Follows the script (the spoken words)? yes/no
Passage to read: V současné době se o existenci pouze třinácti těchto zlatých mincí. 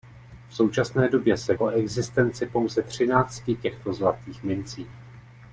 yes